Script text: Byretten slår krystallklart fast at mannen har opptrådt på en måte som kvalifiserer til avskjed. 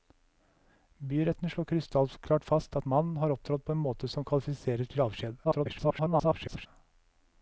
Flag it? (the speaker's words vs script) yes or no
yes